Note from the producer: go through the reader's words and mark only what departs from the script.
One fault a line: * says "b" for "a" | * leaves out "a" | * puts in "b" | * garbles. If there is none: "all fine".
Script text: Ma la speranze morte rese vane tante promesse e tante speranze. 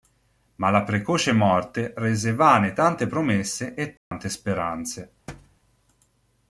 * says "precoce" for "speranze"